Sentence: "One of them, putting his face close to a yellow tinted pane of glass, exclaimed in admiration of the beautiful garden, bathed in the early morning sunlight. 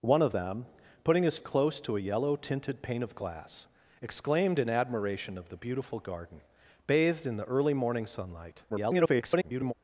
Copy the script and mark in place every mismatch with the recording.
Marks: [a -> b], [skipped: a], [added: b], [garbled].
"One of them, putting his [skipped: face] close to a yellow tinted pane of glass, exclaimed in admiration of the beautiful garden, bathed in the early morning sunlight. [garbled]